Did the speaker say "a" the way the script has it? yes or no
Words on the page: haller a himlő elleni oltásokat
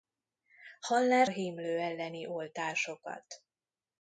yes